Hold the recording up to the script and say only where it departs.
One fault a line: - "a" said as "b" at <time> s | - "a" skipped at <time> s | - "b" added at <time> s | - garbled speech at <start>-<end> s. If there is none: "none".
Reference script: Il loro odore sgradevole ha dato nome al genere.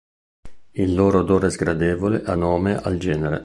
- "dato" skipped at 2.4 s